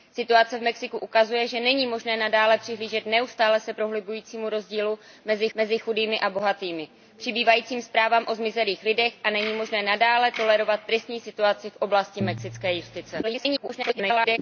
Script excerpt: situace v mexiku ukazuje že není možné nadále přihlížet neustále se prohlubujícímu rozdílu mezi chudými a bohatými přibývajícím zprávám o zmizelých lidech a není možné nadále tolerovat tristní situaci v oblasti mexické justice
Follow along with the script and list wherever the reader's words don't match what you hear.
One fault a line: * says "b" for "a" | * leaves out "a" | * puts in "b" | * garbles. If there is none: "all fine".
* puts in "mezi"
* garbles